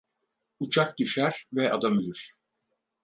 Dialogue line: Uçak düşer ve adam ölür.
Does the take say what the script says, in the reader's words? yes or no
yes